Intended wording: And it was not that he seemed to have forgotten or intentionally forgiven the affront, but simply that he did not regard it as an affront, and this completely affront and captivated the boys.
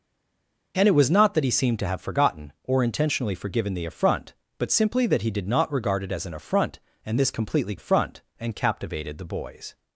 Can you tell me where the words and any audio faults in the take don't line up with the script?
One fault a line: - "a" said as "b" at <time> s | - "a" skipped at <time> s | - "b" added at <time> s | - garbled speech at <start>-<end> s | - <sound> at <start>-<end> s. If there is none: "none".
none